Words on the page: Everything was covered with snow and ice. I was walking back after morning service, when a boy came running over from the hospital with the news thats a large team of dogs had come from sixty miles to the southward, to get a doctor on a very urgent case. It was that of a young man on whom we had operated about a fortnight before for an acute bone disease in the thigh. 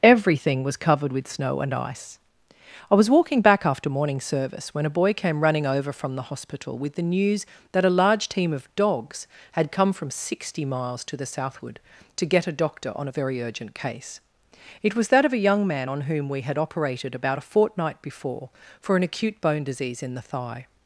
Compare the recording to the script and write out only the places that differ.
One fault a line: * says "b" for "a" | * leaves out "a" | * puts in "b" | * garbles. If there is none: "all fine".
* says "that" for "thats"